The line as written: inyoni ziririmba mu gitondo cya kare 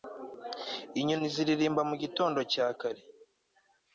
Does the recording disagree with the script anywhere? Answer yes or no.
no